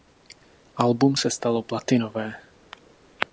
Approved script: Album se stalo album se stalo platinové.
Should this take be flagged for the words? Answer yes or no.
yes